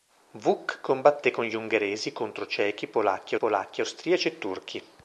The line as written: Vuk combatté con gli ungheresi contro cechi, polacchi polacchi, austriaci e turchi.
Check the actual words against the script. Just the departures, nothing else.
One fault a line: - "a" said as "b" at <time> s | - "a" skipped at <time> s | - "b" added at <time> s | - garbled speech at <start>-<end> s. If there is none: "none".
none